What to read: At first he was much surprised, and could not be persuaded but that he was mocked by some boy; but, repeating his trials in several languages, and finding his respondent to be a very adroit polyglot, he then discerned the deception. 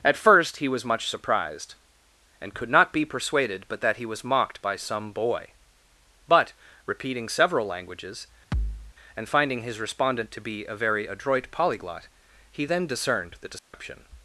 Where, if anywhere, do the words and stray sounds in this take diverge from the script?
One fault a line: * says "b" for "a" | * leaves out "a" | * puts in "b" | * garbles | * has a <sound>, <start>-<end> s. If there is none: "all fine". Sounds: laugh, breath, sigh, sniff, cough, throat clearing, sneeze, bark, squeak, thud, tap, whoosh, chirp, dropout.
* leaves out "his trials in"
* has a thud, 8.5-8.9 s
* has a dropout, 13.6-13.7 s